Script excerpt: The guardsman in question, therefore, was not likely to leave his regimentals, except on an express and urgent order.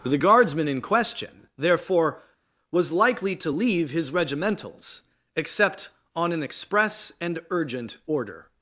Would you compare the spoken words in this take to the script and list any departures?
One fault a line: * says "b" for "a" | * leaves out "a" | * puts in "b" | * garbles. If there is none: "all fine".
* leaves out "not"